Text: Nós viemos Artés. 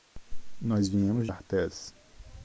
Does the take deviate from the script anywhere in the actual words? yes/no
no